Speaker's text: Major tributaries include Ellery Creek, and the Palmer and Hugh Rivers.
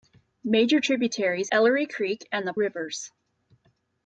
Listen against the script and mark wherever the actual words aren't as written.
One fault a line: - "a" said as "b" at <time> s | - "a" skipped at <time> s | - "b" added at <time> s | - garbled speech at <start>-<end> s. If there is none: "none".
- "include" skipped at 1.5 s
- "Palmer and Hugh" skipped at 2.5 s